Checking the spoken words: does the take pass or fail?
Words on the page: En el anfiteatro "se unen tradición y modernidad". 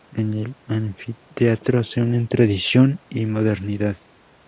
pass